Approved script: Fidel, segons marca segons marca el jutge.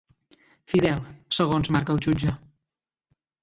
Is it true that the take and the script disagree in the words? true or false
true